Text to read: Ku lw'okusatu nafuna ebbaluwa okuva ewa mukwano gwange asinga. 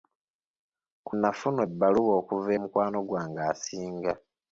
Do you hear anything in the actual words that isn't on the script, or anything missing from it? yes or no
yes